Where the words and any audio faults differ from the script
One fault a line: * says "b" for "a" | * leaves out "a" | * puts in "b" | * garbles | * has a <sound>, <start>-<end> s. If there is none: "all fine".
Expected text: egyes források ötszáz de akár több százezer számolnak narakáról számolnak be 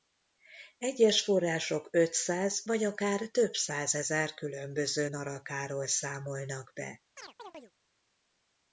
* says "vagy" for "de"
* says "különböző" for "számolnak"
* has a chirp, 7.2-7.7 s